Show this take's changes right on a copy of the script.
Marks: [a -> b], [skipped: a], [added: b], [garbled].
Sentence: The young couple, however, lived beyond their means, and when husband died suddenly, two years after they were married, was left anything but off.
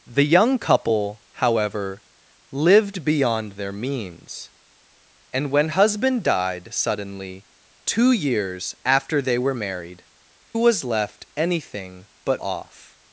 The young couple, however, lived beyond their means, and when husband died suddenly, two years after they were married, was left anything but off.